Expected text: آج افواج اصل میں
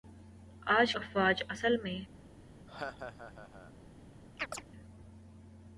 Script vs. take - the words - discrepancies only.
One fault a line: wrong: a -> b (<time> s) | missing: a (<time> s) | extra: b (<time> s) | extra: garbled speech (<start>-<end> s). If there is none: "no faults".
no faults